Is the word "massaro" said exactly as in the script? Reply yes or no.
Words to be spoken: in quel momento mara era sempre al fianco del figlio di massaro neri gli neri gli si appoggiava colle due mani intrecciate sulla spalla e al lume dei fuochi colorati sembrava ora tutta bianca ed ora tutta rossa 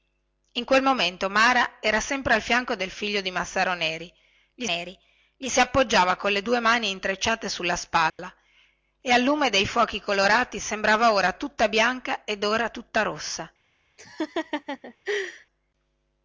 yes